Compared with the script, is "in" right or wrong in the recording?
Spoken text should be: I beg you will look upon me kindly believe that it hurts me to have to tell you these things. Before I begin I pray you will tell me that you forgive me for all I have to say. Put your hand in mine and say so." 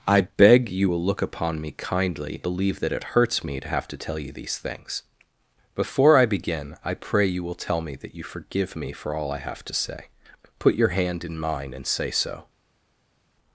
right